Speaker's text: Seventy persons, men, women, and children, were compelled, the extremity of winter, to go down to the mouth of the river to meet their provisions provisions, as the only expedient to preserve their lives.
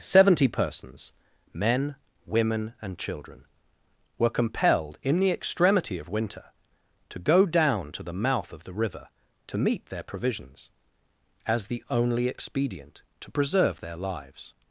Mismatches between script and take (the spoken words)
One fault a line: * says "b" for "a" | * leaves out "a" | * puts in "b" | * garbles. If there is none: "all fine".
* puts in "in"
* leaves out "provisions"